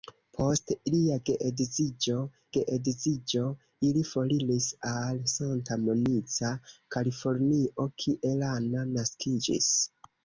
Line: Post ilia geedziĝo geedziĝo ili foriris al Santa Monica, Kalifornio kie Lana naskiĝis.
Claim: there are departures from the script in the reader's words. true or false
false